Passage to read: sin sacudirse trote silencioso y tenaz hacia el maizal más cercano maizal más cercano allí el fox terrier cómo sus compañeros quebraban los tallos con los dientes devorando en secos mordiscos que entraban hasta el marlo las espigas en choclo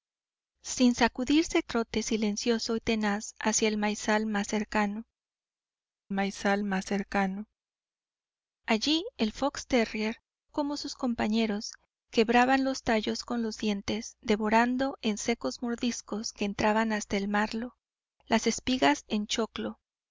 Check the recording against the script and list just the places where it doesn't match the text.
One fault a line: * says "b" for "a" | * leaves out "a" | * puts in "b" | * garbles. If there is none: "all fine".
all fine